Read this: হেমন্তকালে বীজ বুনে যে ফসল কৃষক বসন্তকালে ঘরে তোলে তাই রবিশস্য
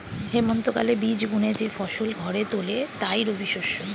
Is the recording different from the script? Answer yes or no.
yes